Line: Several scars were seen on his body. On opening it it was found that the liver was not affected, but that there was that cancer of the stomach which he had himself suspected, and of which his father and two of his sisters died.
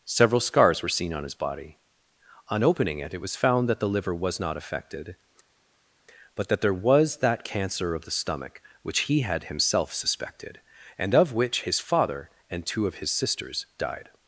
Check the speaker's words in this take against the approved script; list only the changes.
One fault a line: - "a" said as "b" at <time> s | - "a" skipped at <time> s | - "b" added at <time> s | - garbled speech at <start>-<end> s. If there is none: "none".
none